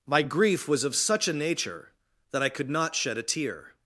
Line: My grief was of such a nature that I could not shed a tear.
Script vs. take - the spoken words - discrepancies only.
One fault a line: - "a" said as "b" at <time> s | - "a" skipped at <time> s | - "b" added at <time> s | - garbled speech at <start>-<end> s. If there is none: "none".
none